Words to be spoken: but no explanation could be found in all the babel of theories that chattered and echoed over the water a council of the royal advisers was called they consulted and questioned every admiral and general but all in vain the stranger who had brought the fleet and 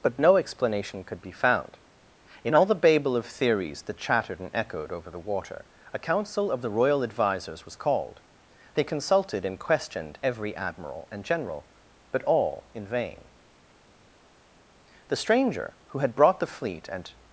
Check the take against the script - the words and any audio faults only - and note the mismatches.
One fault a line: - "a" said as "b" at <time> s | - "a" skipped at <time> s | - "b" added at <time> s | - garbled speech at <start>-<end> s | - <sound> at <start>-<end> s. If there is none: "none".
none